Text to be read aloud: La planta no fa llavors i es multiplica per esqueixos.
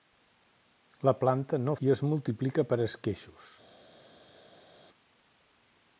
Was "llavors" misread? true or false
true